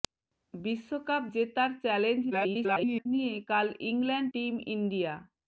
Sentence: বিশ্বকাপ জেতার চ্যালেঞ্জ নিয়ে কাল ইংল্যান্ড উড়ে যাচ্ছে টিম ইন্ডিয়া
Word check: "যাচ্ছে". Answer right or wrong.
wrong